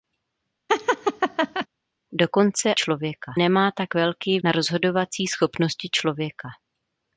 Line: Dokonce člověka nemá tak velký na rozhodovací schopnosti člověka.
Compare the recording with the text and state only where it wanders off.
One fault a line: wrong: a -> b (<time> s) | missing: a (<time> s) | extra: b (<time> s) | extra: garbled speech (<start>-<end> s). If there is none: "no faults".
no faults